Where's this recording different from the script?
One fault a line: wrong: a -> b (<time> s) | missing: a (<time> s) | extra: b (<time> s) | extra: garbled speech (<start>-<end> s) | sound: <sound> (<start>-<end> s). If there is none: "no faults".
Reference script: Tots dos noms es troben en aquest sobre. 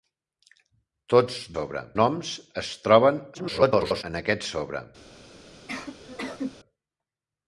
wrong: dos -> sobre (1.5 s)
extra: garbled speech (3.3-4.0 s)
sound: sneeze (5.7-6.6 s)